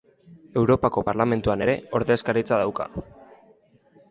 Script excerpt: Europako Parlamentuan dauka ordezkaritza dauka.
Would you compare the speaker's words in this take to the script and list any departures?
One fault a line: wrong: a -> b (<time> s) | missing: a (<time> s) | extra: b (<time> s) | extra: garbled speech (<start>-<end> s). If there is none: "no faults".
wrong: dauka -> ere (1.6 s)